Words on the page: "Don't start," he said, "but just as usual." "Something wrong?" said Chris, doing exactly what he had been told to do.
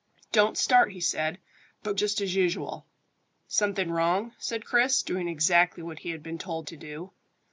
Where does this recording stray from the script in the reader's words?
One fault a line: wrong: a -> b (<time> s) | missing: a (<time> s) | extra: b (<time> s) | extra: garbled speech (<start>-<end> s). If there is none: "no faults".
no faults